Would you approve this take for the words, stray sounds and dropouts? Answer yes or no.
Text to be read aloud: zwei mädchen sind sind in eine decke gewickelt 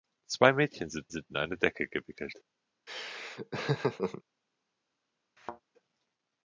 no